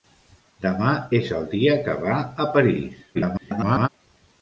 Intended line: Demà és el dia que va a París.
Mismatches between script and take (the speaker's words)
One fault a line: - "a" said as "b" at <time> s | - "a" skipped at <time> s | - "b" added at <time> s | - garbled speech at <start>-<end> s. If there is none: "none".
- garbled speech at 3.1-3.9 s